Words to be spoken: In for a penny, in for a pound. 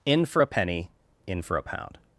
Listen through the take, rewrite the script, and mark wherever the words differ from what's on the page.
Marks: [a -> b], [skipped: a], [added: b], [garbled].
In for a penny, in for a pound.